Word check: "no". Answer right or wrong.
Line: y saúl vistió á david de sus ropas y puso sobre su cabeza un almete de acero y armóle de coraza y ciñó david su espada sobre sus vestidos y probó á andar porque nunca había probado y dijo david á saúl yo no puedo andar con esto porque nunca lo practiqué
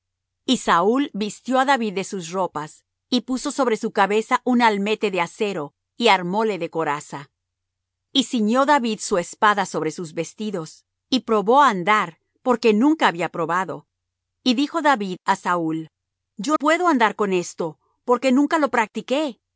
wrong